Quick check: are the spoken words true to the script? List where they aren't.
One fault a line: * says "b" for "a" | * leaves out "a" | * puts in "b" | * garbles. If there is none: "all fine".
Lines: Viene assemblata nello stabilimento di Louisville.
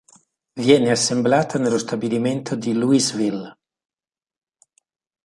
all fine